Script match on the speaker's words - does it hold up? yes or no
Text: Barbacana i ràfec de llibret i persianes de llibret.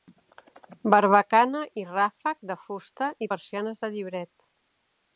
no